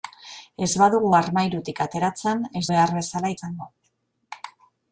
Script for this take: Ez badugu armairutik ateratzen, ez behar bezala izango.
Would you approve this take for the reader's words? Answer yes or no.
yes